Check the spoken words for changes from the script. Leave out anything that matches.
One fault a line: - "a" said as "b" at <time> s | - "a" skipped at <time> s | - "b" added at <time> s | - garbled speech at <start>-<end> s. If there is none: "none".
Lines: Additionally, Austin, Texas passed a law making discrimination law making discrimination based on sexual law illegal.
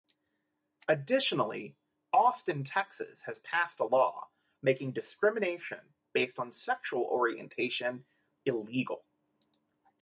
- "has" added at 3.2 s
- "law making discrimination" skipped at 5.9 s
- "law" said as "orientation" at 7.0 s